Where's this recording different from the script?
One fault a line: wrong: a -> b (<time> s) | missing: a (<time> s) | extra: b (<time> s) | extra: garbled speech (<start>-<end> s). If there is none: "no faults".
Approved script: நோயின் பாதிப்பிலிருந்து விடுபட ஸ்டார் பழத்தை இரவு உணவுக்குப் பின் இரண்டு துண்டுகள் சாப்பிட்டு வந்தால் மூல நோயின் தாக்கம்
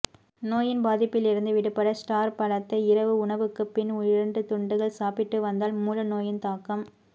no faults